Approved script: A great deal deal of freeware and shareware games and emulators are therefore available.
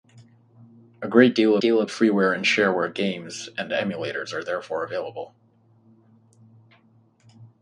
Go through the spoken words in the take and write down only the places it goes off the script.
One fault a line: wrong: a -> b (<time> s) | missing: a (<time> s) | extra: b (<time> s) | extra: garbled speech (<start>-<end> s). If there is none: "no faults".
no faults